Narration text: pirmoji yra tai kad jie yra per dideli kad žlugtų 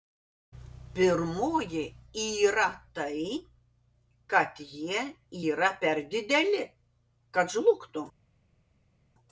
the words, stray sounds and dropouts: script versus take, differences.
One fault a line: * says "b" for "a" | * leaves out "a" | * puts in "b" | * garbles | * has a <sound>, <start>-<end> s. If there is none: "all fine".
all fine